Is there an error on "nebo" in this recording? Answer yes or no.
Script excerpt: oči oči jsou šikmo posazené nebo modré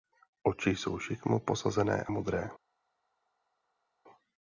yes